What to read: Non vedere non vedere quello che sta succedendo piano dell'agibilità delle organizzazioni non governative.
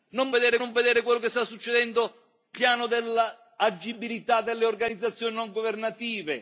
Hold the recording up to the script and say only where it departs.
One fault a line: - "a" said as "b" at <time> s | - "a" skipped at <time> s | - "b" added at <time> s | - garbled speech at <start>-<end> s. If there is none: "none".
none